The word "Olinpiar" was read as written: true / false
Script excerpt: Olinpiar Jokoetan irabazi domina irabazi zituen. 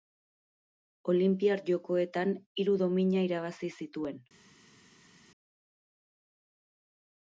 true